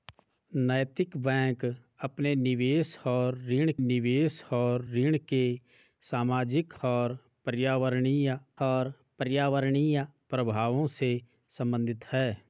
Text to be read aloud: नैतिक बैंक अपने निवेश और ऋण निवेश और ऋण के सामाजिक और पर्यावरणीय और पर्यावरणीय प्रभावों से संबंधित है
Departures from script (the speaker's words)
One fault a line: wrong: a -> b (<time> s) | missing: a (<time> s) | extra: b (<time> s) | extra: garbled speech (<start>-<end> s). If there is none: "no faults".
no faults